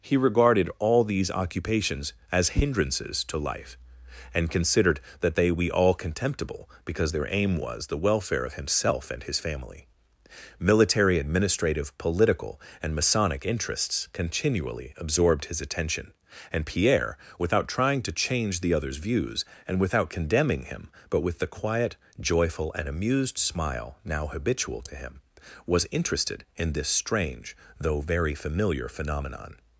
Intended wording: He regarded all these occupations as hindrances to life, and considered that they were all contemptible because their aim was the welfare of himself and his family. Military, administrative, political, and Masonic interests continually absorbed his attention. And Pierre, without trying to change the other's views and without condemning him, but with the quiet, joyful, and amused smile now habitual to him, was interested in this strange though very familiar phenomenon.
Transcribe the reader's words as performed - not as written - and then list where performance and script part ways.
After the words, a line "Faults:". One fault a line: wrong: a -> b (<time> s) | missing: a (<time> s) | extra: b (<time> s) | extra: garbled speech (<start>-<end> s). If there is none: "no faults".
He regarded all these occupations as hindrances to life, and considered that they we all contemptible because their aim was the welfare of himself and his family. Military, administrative, political, and Masonic interests continually absorbed his attention. And Pierre, without trying to change the other's views and without condemning him, but with the quiet, joyful, and amused smile now habitual to him, was interested in this strange though very familiar phenomenon.
Faults:
wrong: were -> we (5.5 s)